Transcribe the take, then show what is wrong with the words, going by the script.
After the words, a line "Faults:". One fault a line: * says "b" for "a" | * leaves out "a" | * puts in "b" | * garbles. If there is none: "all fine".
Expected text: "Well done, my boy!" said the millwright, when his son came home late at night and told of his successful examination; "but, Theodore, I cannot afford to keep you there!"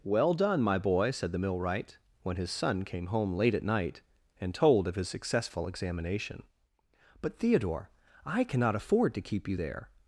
"Well done, my boy!" said the millwright, when his son came home late at night and told of his successful examination; "but, Theodore, I cannot afford to keep you there!"
Faults:
all fine